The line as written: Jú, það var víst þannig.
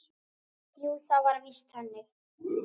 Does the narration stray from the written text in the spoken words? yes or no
no